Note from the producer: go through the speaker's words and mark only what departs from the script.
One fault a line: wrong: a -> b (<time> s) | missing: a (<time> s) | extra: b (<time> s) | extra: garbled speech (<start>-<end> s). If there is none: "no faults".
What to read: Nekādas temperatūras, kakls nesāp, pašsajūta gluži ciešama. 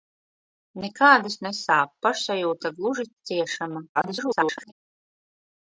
missing: temperatūras kakls (1.4 s)
extra: garbled speech (3.9-4.7 s)